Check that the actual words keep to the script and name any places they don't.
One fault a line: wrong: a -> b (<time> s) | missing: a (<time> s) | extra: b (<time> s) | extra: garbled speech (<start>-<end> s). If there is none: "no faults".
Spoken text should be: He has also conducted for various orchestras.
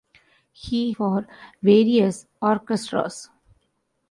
missing: has also conducted (0.9 s)